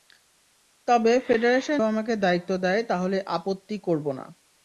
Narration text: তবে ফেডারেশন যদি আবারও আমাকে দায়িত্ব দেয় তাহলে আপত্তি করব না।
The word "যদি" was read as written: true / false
false